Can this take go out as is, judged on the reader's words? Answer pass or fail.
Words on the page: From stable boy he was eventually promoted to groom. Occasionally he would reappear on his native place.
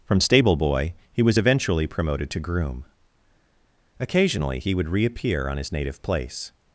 pass